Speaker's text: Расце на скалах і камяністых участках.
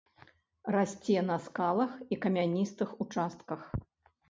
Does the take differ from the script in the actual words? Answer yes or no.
no